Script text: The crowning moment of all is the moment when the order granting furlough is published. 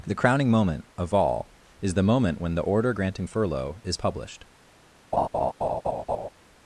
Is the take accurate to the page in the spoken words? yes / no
yes